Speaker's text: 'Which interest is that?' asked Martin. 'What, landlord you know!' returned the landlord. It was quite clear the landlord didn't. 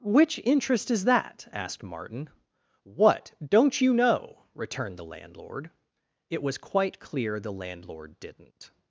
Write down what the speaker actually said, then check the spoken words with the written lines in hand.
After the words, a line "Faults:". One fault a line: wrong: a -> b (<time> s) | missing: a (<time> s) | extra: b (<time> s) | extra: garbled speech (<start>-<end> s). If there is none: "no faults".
'Which interest is that?' asked Martin. 'What, don't you know!' returned the landlord. It was quite clear the landlord didn't.
Faults:
wrong: landlord -> don't (3.5 s)